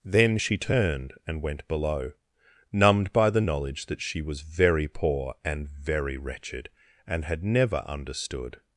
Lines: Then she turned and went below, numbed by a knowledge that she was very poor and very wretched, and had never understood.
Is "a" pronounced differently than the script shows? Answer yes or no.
yes